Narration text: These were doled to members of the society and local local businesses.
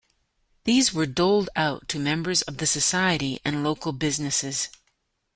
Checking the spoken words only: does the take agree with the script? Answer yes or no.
no